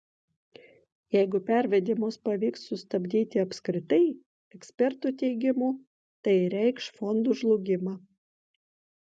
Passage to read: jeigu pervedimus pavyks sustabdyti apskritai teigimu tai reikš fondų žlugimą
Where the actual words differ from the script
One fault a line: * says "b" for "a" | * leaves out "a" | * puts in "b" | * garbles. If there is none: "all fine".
* puts in "ekspertų"